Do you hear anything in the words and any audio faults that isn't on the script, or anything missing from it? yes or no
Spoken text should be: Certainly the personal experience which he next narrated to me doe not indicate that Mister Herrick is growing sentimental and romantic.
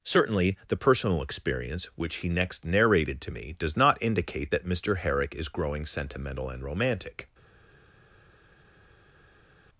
yes